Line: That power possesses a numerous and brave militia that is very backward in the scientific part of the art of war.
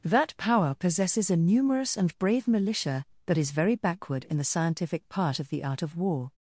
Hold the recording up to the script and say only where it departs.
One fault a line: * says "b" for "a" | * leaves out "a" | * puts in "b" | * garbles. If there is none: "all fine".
all fine